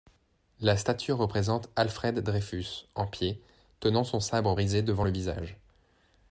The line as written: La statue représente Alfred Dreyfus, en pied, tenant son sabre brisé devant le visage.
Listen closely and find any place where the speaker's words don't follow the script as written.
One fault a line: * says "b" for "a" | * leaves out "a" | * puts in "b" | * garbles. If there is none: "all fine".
all fine